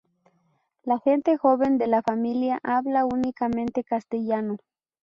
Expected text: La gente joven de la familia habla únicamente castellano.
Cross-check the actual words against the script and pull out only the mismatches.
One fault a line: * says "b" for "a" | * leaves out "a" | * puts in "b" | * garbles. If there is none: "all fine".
all fine